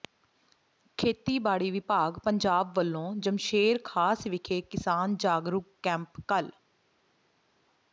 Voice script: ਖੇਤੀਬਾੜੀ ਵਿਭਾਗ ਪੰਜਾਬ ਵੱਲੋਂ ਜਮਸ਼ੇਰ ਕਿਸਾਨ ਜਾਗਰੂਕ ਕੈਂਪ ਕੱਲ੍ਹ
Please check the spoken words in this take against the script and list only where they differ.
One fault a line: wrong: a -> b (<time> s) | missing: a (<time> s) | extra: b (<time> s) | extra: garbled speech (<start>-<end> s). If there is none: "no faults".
extra: ਖਾਸ ਵਿਖੇ (3.9 s)